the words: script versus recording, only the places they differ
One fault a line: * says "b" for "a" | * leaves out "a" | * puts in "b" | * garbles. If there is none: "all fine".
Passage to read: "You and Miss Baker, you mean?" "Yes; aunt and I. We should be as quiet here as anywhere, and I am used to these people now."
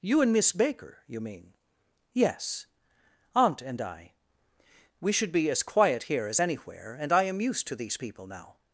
all fine